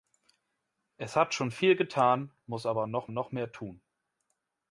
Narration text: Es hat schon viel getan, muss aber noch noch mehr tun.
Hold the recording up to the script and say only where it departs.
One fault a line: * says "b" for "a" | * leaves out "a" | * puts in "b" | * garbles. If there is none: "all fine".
all fine